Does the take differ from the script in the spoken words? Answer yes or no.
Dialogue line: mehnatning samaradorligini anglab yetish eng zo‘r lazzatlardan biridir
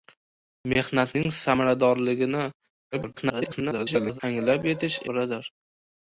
yes